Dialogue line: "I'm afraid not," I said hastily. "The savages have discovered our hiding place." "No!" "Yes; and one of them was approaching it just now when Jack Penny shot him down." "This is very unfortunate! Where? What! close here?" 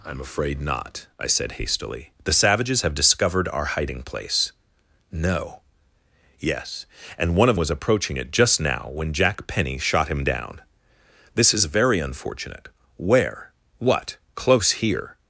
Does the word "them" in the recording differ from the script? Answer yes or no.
yes